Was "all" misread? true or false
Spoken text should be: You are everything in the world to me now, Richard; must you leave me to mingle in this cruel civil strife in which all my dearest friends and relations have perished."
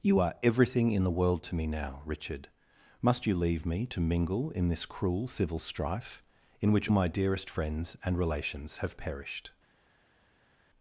true